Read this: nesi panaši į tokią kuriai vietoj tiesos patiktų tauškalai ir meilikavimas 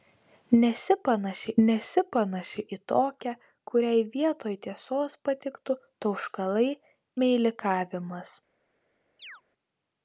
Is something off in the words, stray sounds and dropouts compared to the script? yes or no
yes